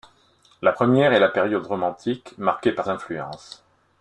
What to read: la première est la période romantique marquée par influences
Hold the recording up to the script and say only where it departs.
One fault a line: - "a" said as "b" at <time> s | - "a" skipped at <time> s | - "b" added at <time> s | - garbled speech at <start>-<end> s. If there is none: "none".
none